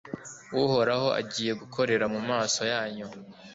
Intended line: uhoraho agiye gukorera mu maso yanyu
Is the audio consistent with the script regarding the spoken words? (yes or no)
yes